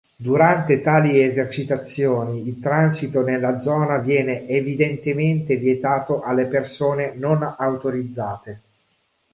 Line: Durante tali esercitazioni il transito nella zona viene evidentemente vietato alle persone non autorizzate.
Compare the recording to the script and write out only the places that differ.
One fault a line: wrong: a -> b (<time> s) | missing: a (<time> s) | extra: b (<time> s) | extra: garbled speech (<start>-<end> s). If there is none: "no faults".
no faults